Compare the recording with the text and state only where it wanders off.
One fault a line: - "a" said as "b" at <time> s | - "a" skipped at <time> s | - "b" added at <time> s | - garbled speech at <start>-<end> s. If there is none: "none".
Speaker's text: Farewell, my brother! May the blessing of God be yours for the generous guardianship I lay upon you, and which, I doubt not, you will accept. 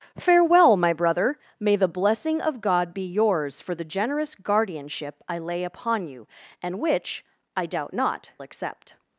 - "you will" skipped at 8.3 s